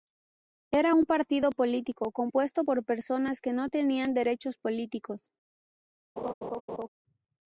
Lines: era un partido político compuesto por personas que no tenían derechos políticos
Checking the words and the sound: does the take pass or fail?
fail